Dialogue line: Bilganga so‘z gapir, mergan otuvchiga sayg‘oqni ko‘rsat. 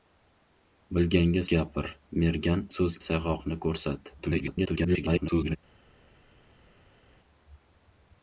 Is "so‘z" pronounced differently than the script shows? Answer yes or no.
yes